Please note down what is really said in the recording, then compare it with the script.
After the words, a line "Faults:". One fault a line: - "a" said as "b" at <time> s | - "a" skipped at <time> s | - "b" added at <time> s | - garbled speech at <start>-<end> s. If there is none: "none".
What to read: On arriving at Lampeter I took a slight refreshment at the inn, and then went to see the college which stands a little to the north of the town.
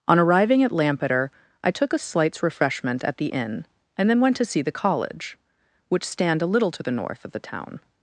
On arriving at Lampeter I took a slights refreshment at the inn, and then went to see the college which stand a little to the north of the town.
Faults:
- "slight" said as "slights" at 2.0 s
- "stands" said as "stand" at 6.0 s